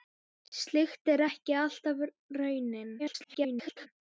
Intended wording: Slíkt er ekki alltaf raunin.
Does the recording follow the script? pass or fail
fail